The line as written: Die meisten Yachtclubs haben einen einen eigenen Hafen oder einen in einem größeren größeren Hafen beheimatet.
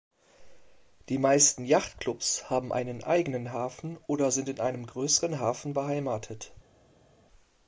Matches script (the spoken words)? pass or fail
fail